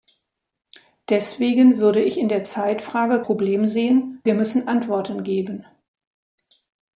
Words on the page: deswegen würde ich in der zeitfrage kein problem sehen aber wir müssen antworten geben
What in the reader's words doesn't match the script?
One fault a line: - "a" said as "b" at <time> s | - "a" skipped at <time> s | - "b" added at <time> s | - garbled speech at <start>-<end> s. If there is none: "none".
- "kein" skipped at 3.2 s
- "aber" skipped at 4.2 s